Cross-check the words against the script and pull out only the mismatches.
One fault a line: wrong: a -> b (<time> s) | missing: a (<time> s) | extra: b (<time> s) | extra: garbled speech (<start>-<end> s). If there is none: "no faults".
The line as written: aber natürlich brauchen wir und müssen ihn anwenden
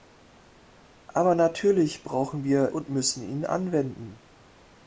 no faults